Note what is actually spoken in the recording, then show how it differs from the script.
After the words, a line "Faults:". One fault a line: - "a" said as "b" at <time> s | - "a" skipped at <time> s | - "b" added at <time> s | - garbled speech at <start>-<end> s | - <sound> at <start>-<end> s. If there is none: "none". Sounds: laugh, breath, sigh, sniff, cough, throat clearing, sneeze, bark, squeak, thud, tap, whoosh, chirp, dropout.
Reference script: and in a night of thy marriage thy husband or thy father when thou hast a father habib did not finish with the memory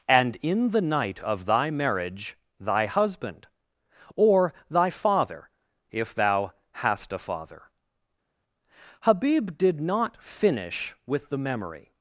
and in the night of thy marriage thy husband or thy father if thou hast a father habib did not finish with the memory
Faults:
- "a" said as "the" at 0.7 s
- "when" said as "if" at 5.9 s